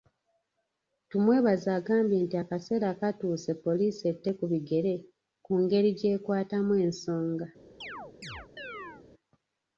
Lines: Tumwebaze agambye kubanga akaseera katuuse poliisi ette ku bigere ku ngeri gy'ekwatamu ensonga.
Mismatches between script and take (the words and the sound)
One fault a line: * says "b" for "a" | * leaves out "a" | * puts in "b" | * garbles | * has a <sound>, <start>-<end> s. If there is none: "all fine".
* says "nti" for "kubanga"
* has a chirp, 7.8-9.0 s